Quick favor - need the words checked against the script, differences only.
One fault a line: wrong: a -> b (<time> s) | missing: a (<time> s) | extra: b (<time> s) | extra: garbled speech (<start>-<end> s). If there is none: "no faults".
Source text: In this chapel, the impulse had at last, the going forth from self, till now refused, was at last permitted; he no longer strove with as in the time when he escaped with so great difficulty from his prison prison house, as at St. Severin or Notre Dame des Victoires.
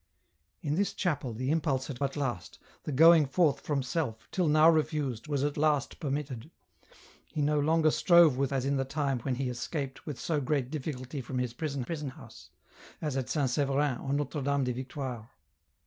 no faults